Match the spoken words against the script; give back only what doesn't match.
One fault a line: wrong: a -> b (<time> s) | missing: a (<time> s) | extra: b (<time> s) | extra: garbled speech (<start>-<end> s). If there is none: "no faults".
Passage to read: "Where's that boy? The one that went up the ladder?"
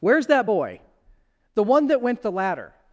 missing: up (2.2 s)